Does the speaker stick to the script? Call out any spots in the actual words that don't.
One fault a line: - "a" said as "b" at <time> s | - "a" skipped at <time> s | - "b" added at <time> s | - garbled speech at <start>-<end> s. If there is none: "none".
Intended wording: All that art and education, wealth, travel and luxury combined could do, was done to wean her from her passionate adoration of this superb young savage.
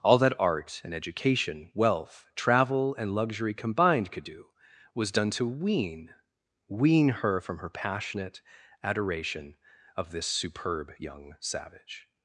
- "wean" added at 6.7 s